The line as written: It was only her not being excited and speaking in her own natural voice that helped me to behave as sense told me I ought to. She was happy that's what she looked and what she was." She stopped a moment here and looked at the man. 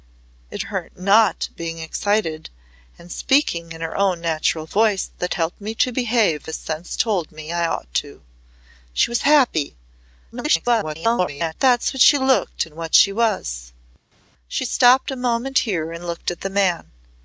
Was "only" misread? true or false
true